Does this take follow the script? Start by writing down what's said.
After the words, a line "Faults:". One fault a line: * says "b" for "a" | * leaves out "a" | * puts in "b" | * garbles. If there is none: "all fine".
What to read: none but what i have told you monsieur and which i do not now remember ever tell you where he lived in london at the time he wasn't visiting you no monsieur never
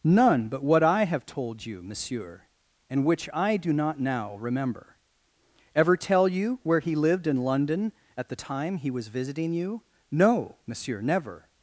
none but what i have told you monsieur and which i do not now remember ever tell you where he lived in london at the time he was visiting you no monsieur never
Faults:
* says "was" for "wasn't"